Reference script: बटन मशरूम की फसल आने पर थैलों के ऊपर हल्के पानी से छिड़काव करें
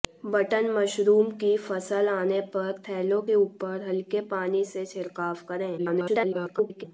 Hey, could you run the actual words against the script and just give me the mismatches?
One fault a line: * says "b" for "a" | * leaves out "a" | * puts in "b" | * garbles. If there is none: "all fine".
* garbles